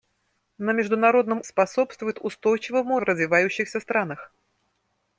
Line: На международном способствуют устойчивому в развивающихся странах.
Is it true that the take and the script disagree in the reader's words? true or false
false